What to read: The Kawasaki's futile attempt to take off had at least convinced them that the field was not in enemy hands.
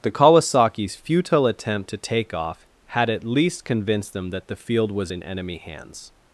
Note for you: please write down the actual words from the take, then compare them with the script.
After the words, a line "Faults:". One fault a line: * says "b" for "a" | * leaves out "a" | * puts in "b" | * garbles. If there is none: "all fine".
The Kawasaki's futile attempt to take off had at least convinced them that the field was in enemy hands.
Faults:
* leaves out "not"